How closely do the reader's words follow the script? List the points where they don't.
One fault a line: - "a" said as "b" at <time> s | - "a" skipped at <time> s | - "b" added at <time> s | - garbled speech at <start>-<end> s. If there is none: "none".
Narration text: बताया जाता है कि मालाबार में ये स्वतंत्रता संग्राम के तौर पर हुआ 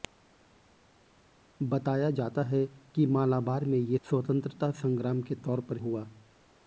none